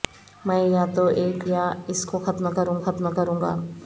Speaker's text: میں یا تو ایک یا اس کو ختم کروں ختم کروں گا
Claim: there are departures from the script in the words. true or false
false